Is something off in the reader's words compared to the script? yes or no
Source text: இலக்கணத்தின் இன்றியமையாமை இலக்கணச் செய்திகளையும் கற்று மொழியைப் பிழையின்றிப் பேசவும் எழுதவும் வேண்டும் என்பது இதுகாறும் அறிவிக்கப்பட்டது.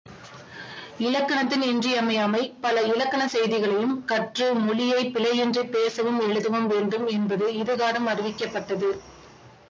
yes